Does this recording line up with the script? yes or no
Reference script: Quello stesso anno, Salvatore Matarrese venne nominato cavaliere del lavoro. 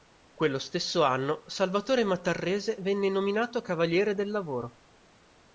yes